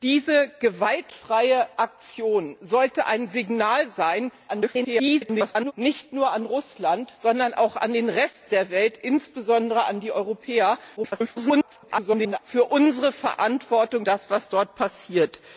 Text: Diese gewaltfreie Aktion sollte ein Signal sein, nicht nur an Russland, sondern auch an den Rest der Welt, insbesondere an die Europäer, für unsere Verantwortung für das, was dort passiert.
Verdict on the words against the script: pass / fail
fail